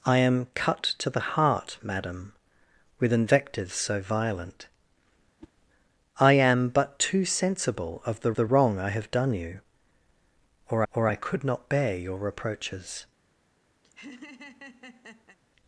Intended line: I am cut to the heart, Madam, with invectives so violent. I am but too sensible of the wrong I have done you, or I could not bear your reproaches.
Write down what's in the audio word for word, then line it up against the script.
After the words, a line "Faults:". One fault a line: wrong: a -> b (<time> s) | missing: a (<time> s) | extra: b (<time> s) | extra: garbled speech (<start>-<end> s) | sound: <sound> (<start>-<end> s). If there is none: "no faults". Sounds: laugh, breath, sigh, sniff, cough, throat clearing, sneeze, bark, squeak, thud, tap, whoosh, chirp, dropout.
I am cut to the heart, Madam, with invectives so violent. I am but too sensible of the the wrong I have done you, or or I could not bear your reproaches.
Faults:
sound: whoosh (5.4-5.5 s)
extra: the (8.3 s)
extra: or (10.9 s)
sound: laugh (13.8-15.4 s)